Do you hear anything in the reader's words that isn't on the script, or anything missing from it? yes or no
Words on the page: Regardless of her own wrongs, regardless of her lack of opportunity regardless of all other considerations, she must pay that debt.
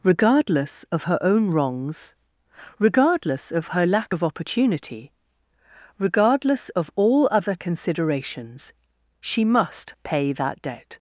no